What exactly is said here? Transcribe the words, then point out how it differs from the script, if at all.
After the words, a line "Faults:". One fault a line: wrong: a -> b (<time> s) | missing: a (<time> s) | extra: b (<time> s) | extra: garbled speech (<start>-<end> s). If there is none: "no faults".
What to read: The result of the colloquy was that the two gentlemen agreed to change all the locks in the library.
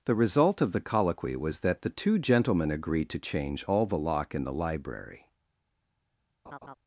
The result of the colloquy was that the two gentlemen agreed to change all the lock in the library.
Faults:
wrong: locks -> lock (4.0 s)